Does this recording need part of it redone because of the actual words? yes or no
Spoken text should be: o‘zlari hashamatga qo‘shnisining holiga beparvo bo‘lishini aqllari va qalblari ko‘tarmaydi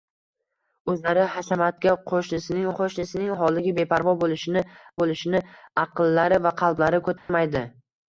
yes